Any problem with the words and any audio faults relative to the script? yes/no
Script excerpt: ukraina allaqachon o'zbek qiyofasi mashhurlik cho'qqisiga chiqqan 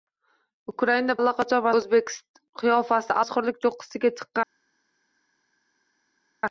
no